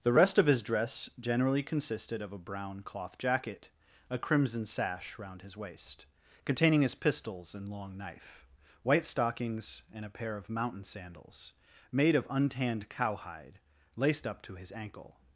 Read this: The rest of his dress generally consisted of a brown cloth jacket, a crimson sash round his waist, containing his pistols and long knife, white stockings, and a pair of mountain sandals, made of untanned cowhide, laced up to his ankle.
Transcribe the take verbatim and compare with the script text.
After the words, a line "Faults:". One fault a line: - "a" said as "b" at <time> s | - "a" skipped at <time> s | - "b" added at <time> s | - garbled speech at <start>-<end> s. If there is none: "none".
The rest of his dress generally consisted of a brown cloth jacket, a crimson sash round his waist, containing his pistols and long knife, white stockings, and a pair of mountain sandals, made of untanned cowhide, laced up to his ankle.
Faults:
none